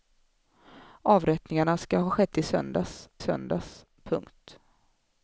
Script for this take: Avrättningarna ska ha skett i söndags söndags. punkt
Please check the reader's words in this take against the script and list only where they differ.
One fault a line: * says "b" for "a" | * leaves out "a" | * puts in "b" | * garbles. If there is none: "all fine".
all fine